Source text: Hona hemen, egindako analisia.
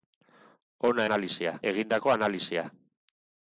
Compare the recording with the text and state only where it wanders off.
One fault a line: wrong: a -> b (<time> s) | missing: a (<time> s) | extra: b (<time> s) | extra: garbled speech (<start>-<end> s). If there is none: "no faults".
wrong: hemen -> analisia (1.1 s)